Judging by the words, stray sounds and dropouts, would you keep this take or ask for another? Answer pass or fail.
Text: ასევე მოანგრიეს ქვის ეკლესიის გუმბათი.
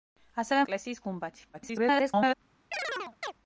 fail